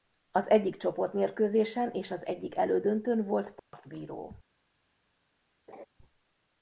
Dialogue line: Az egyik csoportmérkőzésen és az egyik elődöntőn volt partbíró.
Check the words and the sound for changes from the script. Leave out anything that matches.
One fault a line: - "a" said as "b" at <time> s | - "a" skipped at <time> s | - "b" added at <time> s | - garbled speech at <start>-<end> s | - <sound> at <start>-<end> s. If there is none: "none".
- dropout at 3.6-3.7 s
- laugh at 5.7-5.9 s